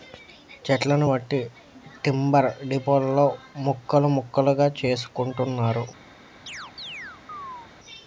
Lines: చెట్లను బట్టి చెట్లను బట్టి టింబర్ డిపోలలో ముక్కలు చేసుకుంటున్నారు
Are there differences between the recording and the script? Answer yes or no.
yes